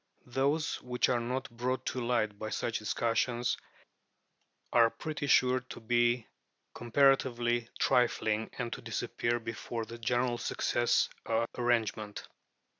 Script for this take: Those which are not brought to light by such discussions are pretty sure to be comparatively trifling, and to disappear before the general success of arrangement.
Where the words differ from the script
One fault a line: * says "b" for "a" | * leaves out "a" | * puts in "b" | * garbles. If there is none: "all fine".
all fine